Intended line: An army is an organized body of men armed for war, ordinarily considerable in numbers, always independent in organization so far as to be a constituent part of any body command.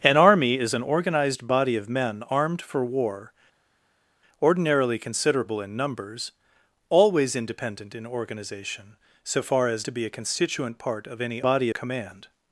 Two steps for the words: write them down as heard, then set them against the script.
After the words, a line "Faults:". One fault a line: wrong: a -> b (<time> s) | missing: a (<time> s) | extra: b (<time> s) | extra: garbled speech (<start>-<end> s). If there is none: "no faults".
An army is an organized body of men armed for war, ordinarily considerable in numbers, always independent in organization so far as to be a constituent part of any body command.
Faults:
no faults